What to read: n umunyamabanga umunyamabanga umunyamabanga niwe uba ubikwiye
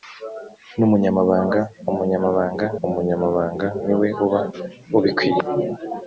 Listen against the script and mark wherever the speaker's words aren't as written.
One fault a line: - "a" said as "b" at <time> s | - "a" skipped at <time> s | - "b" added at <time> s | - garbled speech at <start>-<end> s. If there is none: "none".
none